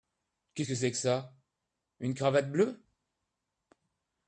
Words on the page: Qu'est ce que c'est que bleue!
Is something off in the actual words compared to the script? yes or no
yes